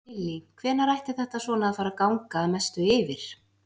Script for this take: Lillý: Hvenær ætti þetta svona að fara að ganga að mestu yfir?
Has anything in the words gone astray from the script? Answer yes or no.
no